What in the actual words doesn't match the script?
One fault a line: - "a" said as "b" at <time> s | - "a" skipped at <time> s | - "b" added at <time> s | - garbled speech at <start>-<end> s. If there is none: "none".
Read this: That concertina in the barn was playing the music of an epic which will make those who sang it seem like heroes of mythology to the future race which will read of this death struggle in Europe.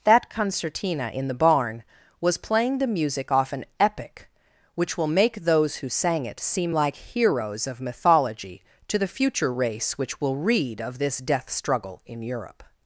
- "of" said as "off" at 3.3 s